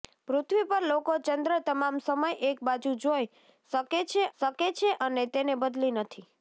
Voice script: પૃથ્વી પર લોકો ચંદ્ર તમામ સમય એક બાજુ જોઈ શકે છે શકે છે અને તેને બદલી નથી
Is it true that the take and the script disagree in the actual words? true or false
false